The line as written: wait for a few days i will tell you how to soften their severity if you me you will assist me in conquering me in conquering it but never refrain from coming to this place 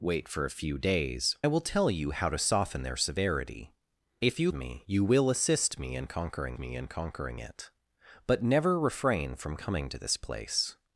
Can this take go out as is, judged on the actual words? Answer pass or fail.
pass